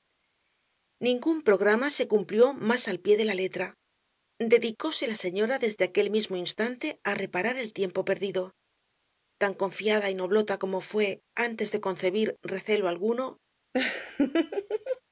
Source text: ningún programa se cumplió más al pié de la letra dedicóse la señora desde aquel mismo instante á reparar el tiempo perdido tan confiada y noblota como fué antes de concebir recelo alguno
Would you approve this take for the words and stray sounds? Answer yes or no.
no